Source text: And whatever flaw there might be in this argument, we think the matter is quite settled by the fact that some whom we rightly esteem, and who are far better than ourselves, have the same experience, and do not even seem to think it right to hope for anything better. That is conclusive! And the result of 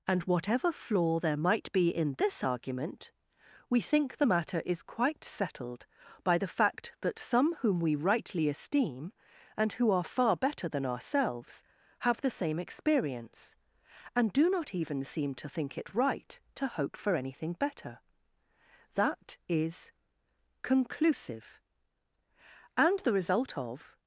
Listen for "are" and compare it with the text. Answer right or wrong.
right